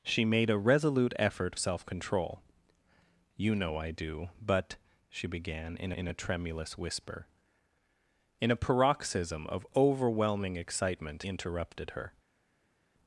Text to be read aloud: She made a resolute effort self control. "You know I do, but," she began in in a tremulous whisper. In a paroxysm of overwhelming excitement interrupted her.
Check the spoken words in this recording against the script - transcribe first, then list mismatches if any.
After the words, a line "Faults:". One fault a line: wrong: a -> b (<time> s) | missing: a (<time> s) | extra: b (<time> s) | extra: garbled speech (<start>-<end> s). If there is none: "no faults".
She made a resolute effort self control. "You know I do, but," she began in in a tremulous whisper. In a paroxysm of overwhelming excitement interrupted her.
Faults:
no faults